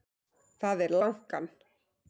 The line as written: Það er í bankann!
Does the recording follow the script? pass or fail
pass